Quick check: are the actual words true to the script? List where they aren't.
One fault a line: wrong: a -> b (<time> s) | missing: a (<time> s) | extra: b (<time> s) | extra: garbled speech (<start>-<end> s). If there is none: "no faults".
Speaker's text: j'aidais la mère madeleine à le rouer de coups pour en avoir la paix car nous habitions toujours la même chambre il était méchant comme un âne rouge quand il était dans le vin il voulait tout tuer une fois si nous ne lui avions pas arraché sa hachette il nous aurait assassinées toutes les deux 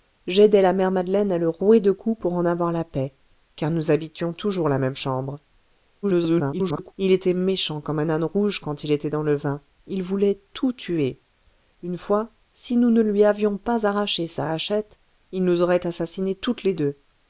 extra: garbled speech (6.0-6.9 s)